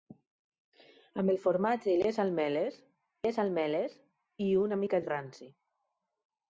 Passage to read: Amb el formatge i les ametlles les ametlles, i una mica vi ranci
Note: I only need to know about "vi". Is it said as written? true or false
true